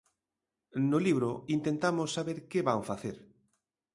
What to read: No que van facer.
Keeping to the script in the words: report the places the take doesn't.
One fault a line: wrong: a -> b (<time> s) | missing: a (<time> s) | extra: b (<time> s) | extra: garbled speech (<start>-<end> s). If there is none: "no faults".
extra: libro intentamos saber (1.1 s)